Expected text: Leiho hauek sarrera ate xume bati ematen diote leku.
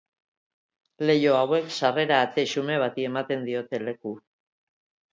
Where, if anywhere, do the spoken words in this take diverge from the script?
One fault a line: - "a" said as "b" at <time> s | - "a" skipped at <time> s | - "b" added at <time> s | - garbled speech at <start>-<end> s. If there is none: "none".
none